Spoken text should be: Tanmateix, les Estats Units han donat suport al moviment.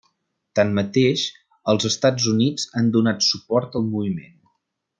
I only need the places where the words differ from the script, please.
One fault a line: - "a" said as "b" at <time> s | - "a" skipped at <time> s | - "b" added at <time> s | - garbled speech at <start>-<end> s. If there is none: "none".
- "les" said as "els" at 1.7 s